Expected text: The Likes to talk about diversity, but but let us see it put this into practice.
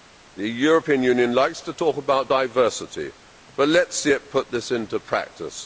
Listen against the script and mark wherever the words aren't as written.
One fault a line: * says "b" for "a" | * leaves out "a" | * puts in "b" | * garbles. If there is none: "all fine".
* puts in "European Union"
* leaves out "but"